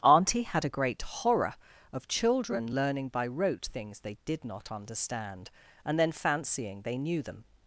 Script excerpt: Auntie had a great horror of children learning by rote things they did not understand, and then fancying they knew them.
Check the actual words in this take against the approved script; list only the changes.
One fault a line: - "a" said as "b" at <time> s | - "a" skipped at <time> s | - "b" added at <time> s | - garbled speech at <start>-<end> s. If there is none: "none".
none